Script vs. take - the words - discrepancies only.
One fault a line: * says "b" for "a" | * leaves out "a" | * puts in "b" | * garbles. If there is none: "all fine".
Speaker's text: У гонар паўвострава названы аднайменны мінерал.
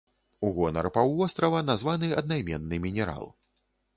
all fine